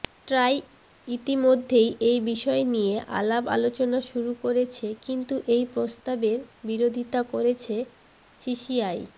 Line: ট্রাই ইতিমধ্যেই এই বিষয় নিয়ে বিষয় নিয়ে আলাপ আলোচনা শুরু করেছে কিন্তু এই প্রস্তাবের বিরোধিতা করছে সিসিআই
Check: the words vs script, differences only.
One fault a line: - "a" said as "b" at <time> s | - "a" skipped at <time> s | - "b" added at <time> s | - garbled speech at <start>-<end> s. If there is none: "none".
- "বিষয় নিয়ে" skipped at 3.0 s